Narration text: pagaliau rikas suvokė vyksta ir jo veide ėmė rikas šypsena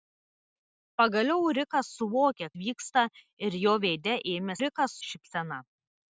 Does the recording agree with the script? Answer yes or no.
yes